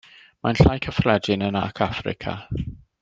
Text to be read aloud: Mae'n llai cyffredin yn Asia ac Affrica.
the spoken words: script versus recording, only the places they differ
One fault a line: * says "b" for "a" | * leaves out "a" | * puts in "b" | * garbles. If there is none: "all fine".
* leaves out "Asia"